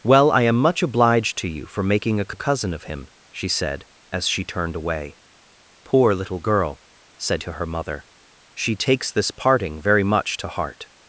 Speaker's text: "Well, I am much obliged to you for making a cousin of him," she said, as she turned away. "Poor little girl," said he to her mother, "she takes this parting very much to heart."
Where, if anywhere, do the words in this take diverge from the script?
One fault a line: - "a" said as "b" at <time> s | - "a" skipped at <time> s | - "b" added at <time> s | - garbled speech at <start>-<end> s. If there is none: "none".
- "a" added at 2.3 s
- "he" skipped at 7.4 s